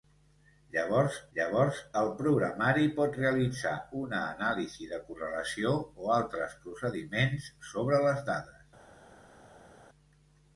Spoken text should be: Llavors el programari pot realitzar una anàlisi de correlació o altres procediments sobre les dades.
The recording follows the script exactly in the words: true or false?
false